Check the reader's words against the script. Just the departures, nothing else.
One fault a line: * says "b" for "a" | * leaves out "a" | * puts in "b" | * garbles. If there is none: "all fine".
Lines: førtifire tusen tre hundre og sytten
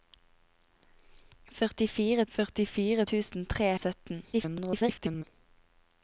* puts in "førtifire"
* leaves out "hundre"
* garbles